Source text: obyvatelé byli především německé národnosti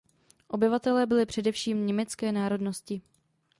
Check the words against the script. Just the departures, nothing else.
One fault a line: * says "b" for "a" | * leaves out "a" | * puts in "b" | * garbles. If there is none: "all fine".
all fine